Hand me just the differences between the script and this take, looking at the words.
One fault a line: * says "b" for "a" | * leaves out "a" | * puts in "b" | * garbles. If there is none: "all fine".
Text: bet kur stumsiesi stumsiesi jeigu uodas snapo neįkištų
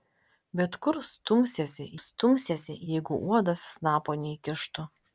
all fine